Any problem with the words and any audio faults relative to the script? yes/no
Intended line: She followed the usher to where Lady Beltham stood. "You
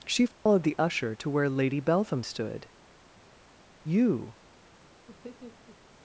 yes